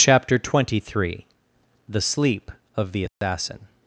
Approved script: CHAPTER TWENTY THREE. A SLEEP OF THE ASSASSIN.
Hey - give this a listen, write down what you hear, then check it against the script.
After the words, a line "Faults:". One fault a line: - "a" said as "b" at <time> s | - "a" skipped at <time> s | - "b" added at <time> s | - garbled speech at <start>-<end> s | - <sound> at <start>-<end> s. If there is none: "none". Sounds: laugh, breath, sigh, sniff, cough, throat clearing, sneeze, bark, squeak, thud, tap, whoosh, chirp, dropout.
CHAPTER TWENTY THREE. THE SLEEP OF THE ASSASSIN.
Faults:
- "A" said as "THE" at 1.9 s
- dropout at 3.1-3.2 s